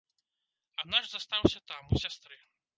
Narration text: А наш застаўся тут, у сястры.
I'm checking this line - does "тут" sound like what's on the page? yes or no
no